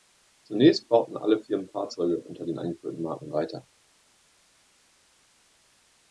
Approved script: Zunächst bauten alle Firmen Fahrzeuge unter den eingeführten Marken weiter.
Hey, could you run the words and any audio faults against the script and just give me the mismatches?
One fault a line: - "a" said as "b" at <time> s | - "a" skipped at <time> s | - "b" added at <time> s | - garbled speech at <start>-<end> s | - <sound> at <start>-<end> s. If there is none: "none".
none